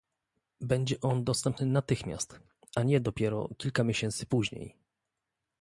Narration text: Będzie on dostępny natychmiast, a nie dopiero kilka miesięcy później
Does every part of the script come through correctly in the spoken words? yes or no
yes